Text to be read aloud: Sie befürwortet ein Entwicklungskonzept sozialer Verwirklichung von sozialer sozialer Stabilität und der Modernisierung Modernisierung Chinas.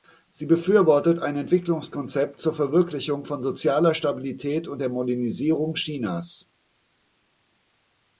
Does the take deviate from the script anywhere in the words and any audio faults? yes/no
yes